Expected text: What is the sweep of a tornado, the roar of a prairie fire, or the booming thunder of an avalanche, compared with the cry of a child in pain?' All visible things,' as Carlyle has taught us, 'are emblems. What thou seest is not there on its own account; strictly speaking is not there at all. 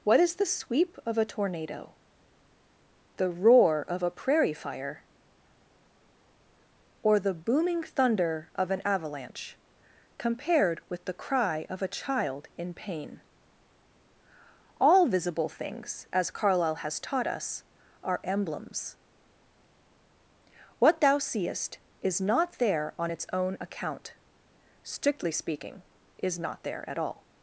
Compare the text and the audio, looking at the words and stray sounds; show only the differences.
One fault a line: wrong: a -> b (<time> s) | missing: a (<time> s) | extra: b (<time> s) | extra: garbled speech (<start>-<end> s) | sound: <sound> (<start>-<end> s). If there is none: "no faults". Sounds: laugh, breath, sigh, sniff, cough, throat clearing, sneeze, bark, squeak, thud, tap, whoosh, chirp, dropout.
no faults